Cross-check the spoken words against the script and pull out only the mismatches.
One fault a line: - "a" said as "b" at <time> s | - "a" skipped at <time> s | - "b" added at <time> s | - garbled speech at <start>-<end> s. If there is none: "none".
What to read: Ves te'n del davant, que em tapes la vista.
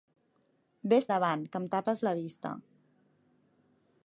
- "te'n del" skipped at 1.1 s